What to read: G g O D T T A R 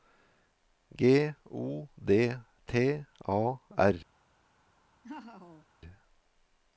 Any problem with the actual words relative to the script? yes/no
yes